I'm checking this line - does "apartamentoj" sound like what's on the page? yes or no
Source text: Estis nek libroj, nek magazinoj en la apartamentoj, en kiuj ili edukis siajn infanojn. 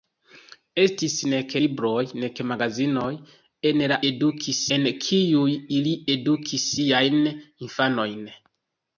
no